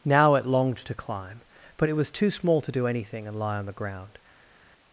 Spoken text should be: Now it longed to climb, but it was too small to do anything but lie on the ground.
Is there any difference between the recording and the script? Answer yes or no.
yes